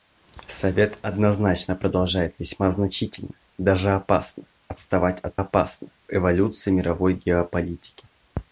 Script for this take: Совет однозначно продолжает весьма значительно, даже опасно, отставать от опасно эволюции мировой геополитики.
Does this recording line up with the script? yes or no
yes